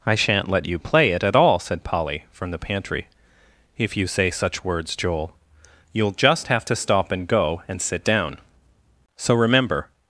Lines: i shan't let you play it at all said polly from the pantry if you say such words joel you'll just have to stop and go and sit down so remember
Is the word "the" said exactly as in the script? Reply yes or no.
yes